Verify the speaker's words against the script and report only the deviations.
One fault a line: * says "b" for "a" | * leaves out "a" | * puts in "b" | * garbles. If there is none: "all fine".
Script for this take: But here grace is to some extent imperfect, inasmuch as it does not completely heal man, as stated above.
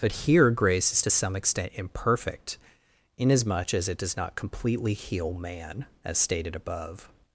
all fine